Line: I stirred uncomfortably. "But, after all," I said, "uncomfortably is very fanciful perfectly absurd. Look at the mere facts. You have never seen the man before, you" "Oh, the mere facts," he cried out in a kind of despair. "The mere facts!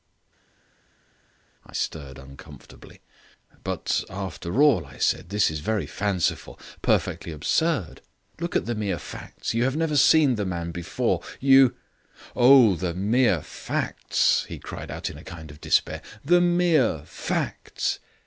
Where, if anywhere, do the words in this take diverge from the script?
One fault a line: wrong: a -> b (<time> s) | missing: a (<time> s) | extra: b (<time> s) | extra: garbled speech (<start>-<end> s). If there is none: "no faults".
wrong: uncomfortably -> this (5.3 s)